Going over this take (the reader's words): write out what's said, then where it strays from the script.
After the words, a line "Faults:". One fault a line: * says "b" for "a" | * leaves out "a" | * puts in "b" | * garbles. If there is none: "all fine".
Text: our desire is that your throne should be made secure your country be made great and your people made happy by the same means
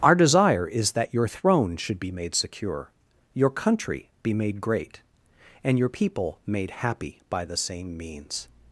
our desire is that your throne should be made secure your country be made great and your people made happy by the same means
Faults:
all fine